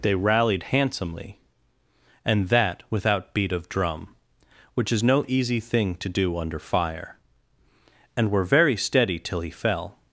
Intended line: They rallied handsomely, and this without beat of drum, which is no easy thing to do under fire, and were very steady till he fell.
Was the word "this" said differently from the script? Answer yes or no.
yes